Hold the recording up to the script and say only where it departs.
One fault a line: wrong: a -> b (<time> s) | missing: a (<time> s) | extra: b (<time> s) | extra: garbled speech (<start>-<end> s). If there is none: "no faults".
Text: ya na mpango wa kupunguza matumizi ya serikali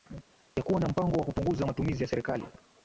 extra: kuwa (0.6 s)